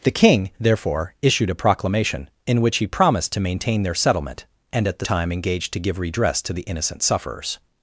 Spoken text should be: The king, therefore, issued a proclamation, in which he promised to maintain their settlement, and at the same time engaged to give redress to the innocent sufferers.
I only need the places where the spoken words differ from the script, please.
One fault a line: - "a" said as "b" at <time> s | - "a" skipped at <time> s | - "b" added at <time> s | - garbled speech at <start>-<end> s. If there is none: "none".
- "same" skipped at 5.0 s